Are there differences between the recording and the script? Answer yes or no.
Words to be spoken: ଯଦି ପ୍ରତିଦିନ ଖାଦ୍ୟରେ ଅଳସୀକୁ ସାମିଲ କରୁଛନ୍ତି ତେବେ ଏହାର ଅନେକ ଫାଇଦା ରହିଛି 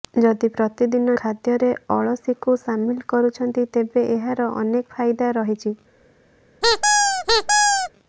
no